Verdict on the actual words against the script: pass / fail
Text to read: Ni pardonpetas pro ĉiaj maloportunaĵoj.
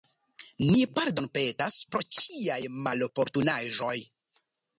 pass